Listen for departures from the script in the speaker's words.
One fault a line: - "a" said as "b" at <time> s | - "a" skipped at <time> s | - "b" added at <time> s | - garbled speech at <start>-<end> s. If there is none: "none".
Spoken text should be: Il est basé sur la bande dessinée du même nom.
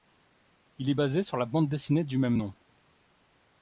none